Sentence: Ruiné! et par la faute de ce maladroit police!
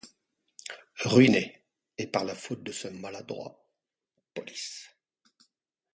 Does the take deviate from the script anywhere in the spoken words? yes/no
no